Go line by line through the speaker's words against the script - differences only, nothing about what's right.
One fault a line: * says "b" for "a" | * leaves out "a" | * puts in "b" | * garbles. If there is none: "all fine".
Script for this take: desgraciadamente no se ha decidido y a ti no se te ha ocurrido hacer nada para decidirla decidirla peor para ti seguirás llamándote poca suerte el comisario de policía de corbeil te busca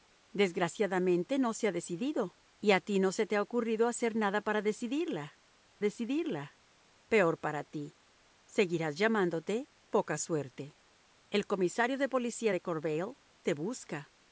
all fine